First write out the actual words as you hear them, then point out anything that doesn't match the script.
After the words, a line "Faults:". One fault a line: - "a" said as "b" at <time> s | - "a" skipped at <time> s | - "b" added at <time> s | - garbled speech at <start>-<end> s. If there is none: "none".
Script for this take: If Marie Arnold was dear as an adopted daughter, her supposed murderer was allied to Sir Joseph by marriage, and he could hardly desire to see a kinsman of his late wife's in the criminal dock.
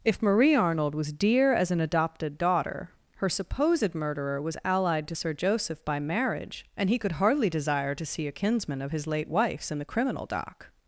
If Marie Arnold was dear as an adopted daughter, her supposed murderer was allied to Sir Joseph by marriage, and he could hardly desire to see a kinsman of his late wife's in the criminal dock.
Faults:
none